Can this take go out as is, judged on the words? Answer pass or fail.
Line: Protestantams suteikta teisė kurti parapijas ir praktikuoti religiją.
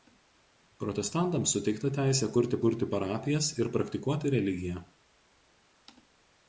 fail